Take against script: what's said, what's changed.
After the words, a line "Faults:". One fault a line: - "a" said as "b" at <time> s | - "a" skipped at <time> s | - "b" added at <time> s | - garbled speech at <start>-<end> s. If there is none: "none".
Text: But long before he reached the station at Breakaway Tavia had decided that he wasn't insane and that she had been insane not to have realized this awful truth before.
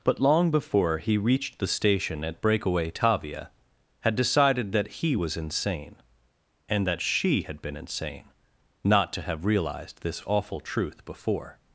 But long before he reached the station at Breakaway Tavia had decided that he was insane and that she had been insane not to have realized this awful truth before.
Faults:
- "wasn't" said as "was" at 5.1 s